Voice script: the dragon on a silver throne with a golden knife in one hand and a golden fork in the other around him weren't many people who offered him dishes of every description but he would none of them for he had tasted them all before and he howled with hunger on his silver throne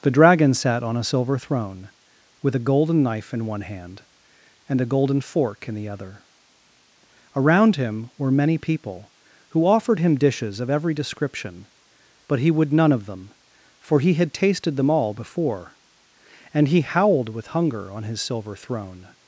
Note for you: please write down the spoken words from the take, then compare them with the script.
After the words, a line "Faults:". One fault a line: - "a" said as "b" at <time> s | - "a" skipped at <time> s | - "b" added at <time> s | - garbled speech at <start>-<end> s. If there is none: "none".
the dragon sat on a silver throne with a golden knife in one hand and a golden fork in the other around him were many people who offered him dishes of every description but he would none of them for he had tasted them all before and he howled with hunger on his silver throne
Faults:
- "sat" added at 0.6 s
- "weren't" said as "were" at 8.2 s